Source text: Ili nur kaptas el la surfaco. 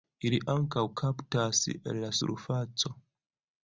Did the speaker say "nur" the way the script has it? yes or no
no